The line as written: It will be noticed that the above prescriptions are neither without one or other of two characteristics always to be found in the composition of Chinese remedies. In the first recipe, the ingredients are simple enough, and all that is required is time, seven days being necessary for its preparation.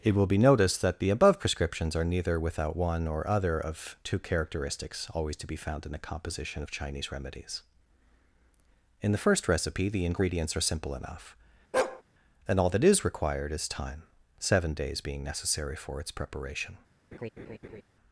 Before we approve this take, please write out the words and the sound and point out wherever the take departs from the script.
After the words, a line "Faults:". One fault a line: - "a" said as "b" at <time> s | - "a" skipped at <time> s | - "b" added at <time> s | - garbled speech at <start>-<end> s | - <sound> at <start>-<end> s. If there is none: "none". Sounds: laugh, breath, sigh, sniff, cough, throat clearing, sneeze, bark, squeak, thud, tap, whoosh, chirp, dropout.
It will be noticed that the above prescriptions are neither without one or other of two characteristics always to be found in the composition of Chinese remedies. In the first recipe, the ingredients are simple enough, and all that is required is time, seven days being necessary for its preparation.
Faults:
- bark at 11.7-12.0 s
- laugh at 17.1-17.8 s